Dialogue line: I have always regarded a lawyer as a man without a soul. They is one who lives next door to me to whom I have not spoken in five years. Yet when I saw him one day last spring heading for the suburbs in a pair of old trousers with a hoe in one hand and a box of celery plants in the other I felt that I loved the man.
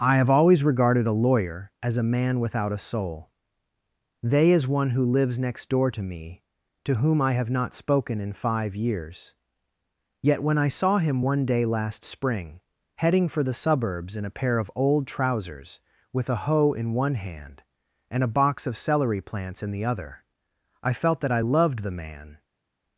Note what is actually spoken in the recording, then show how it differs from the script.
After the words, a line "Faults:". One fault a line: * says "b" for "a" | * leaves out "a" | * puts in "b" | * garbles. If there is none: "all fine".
I have always regarded a lawyer as a man without a soul. They is one who lives next door to me to whom I have not spoken in five years. Yet when I saw him one day last spring heading for the suburbs in a pair of old trousers with a hoe in one hand and a box of celery plants in the other I felt that I loved the man.
Faults:
all fine